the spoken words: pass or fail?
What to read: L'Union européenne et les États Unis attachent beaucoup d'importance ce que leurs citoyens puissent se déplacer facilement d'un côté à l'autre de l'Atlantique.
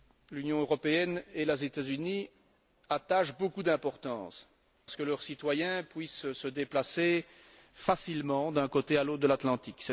pass